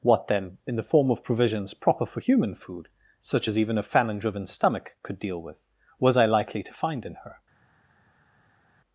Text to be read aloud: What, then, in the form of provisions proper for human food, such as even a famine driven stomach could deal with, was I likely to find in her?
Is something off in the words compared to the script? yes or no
no